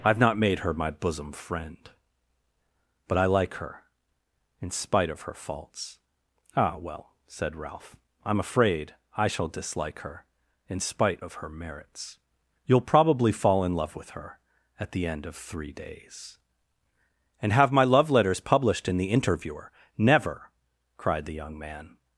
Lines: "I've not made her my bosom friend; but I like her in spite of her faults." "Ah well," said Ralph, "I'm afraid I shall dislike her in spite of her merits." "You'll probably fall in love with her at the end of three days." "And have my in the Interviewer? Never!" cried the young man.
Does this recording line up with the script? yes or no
no